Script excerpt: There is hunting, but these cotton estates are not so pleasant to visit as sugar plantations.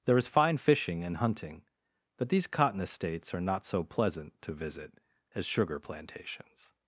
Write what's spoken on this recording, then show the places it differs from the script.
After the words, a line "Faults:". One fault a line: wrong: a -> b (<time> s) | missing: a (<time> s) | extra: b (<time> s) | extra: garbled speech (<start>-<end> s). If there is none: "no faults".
There is fine fishing and hunting, but these cotton estates are not so pleasant to visit as sugar plantations.
Faults:
extra: fine fishing and (0.3 s)